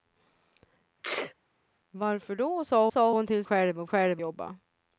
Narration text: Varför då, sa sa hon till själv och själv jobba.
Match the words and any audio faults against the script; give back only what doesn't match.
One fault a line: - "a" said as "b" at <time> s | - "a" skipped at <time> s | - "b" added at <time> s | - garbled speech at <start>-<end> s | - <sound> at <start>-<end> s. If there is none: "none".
- sneeze at 1.0-1.3 s